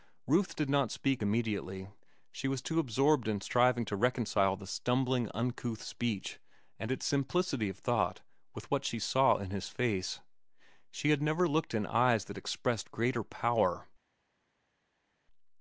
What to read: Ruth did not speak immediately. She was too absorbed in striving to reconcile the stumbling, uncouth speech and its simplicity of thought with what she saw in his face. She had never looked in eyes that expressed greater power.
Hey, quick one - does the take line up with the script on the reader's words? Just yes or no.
yes